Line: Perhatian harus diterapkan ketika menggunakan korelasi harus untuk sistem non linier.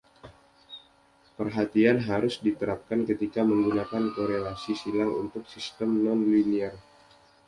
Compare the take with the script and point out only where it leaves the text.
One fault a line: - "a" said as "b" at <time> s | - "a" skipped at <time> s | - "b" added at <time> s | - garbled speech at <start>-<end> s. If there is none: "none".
- "harus" said as "silang" at 4.7 s